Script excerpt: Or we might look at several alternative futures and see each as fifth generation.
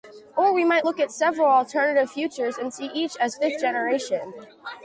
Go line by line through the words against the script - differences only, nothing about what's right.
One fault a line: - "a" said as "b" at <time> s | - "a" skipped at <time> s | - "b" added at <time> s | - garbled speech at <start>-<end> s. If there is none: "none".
none